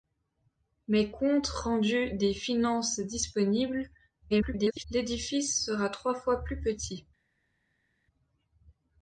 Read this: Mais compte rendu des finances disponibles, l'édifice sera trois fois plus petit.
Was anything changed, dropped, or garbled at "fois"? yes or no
no